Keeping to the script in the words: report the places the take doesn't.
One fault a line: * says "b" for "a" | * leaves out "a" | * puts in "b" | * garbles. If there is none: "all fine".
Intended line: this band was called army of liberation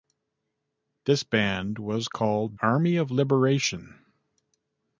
all fine